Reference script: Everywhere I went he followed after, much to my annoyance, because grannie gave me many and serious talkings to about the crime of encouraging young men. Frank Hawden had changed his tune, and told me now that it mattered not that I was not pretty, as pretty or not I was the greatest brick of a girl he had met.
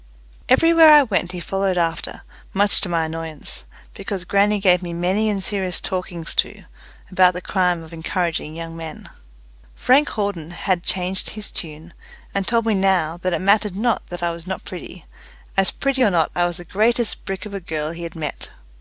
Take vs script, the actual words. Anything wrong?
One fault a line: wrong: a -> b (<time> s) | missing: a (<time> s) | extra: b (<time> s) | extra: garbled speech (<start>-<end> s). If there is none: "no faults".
no faults